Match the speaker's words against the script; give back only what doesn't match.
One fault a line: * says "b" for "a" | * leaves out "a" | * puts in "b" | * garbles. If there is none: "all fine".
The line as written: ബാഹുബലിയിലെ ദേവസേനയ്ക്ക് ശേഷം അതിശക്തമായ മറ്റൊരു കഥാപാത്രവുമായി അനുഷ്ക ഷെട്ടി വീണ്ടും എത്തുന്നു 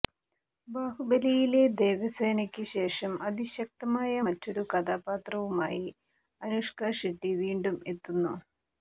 all fine